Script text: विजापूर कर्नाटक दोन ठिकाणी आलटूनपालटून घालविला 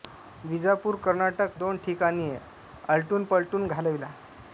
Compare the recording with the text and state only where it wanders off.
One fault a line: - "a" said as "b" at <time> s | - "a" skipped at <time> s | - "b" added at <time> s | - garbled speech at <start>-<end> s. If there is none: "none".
none